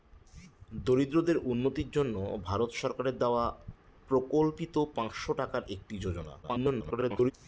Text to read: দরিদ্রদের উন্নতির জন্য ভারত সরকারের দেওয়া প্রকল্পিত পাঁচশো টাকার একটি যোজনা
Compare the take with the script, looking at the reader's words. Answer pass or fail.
fail